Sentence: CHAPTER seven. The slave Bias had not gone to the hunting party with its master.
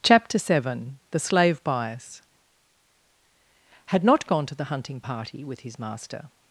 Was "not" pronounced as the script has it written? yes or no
yes